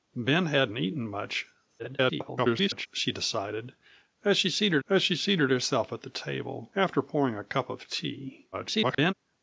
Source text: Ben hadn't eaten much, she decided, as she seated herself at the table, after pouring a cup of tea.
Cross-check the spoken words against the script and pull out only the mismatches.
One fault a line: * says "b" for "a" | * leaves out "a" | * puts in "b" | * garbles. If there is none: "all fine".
* garbles
* puts in "as she seated"
* garbles